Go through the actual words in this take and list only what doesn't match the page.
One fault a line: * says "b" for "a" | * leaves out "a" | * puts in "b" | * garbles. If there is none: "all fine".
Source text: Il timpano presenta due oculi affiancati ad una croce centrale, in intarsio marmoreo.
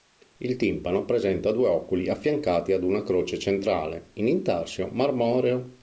all fine